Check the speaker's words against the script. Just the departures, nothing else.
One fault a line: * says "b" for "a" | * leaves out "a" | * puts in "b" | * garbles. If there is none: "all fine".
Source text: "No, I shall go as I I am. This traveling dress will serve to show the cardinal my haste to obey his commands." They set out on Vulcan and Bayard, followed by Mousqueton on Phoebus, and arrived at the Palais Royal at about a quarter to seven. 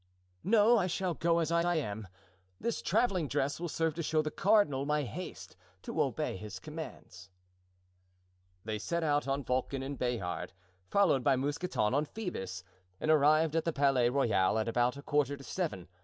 all fine